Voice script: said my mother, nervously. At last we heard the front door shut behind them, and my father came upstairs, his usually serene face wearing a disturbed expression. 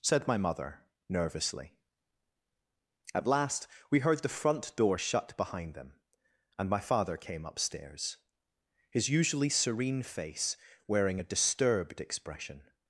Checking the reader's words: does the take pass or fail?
pass